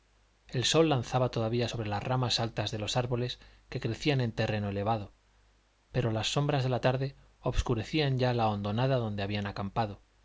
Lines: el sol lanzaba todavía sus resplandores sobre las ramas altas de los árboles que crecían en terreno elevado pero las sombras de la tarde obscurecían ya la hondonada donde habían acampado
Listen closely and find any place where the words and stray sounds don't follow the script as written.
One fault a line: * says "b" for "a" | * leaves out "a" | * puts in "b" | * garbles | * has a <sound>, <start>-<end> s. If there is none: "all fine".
* leaves out "sus resplandores"